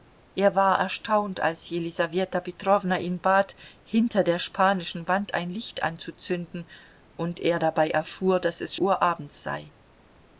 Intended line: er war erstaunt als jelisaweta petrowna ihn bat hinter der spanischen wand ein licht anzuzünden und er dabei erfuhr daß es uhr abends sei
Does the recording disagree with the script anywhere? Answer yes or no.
no